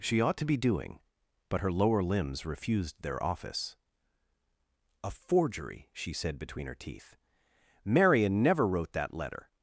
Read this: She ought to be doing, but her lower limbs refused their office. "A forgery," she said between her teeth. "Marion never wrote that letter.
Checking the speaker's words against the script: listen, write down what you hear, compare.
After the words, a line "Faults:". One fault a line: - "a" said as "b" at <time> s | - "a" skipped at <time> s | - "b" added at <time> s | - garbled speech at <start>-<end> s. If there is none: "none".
She ought to be doing, but her lower limbs refused their office. "A forgery," she said between her teeth. "Marion never wrote that letter.
Faults:
none